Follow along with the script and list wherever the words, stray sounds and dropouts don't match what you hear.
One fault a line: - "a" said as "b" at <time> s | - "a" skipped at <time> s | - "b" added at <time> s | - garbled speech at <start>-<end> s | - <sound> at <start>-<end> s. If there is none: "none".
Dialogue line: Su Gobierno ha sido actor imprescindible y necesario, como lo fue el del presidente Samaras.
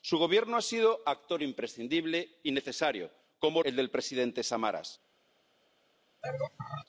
- "lo fue" skipped at 3.6 s
- laugh at 6.2-6.9 s